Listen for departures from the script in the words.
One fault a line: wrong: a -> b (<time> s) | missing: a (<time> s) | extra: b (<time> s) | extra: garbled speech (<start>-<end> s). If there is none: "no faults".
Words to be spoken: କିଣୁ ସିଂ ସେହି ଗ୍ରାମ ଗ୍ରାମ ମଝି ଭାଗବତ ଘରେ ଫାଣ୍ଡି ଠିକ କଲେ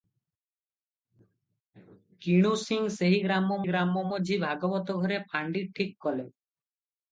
no faults